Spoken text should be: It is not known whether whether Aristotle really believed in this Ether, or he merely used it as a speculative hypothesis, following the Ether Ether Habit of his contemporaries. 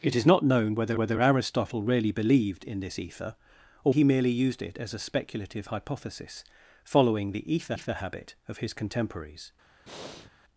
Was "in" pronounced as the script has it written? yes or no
yes